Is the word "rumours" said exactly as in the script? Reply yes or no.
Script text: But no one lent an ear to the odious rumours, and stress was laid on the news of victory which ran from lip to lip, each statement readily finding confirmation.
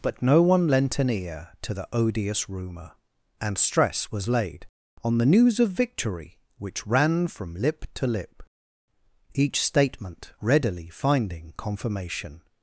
no